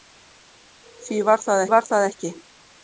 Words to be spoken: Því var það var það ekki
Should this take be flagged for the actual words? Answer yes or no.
no